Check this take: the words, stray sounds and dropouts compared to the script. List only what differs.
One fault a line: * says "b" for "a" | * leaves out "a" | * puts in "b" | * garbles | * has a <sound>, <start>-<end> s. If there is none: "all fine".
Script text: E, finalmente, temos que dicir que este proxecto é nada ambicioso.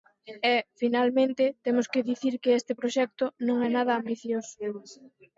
* puts in "non"